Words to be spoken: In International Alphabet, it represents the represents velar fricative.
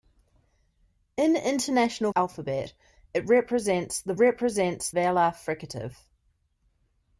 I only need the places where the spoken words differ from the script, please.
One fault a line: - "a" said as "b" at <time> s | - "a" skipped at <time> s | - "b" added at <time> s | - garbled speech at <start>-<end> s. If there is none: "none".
none